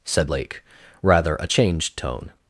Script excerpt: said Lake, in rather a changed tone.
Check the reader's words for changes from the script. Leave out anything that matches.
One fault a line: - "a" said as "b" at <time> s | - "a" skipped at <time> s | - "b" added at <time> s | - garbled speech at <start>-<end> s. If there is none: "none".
- "in" skipped at 0.6 s